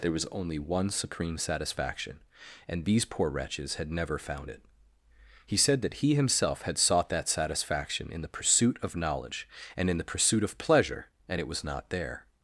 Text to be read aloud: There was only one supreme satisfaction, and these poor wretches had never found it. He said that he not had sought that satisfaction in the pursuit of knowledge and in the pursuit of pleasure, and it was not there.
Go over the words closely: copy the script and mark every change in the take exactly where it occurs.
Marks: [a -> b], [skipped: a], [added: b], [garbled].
There was only one supreme satisfaction, and these poor wretches had never found it. He said that he [not -> himself] had sought that satisfaction in the pursuit of knowledge and in the pursuit of pleasure, and it was not there.